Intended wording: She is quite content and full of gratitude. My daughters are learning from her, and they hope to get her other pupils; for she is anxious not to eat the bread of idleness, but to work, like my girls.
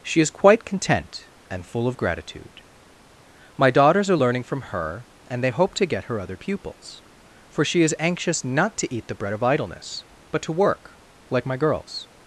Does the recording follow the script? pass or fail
pass